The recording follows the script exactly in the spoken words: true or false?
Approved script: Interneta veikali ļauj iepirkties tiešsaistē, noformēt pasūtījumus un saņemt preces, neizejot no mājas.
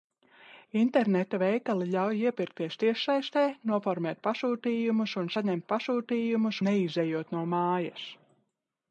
false